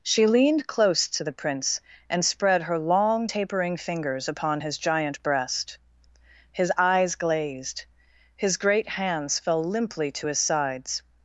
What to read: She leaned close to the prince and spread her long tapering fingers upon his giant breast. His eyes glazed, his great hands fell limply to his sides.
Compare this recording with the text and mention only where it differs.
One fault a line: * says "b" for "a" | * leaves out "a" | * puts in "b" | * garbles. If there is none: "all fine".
all fine